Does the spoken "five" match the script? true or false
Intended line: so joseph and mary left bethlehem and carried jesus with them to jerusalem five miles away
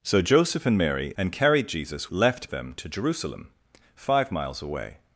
true